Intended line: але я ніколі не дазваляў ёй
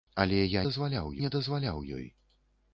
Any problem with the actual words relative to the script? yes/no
yes